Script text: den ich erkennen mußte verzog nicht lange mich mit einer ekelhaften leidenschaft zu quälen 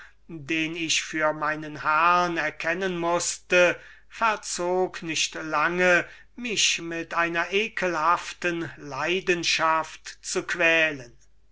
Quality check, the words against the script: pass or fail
fail